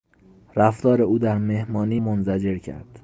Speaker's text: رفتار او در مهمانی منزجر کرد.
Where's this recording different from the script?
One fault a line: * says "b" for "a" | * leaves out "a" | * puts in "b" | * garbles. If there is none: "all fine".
all fine